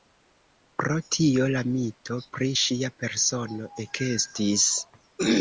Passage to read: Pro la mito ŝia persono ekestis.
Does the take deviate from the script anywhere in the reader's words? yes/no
yes